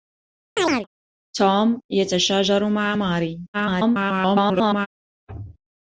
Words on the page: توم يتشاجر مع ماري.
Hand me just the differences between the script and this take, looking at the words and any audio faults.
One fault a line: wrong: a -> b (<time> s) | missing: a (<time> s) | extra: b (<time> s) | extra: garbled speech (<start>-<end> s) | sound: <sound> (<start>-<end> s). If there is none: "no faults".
sound: chirp (0.6-0.9 s)
extra: garbled speech (3.5-4.9 s)